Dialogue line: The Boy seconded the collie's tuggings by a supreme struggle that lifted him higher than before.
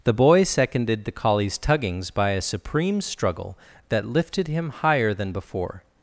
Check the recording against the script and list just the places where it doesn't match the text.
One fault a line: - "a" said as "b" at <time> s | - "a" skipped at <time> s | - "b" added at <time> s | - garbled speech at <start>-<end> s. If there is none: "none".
none